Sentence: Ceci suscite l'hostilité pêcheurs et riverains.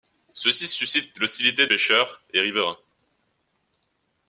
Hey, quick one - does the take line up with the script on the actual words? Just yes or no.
yes